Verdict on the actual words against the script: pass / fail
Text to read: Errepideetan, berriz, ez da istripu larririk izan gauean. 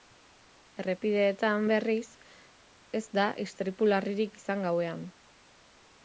pass